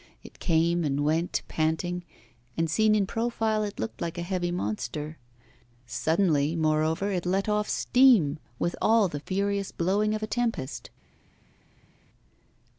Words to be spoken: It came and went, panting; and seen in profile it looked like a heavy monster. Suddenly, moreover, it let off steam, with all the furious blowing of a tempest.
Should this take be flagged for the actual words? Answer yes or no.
no